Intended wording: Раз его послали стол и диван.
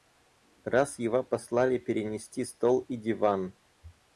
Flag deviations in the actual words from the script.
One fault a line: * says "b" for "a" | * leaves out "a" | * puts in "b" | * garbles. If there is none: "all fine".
* puts in "перенести"